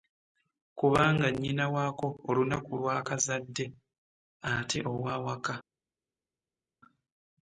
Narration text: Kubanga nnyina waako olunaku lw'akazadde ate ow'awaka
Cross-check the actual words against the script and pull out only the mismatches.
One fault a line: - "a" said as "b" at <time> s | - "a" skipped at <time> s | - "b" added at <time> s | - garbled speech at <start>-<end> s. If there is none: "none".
none